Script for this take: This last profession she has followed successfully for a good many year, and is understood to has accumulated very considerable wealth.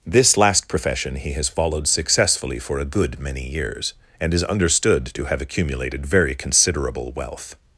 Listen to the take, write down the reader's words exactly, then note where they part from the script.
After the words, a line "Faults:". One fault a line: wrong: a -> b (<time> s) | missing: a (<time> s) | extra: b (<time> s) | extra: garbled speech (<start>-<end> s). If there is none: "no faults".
This last profession he has followed successfully for a good many years, and is understood to have accumulated very considerable wealth.
Faults:
wrong: she -> he (1.1 s)
wrong: year -> years (3.5 s)
wrong: has -> have (5.2 s)